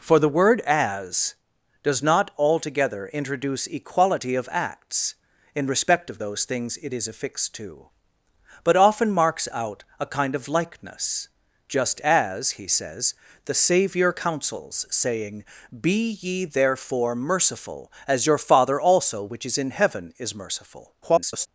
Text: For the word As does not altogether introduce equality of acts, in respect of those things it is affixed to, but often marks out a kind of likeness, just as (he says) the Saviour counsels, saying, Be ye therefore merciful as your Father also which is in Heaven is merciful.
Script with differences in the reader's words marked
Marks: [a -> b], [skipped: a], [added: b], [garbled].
For the word As does not altogether introduce equality of acts, in respect of those things it is affixed to, but often marks out a kind of likeness, just as (he says) the Saviour counsels, saying, Be ye therefore merciful as your Father also which is in Heaven is merciful. [garbled]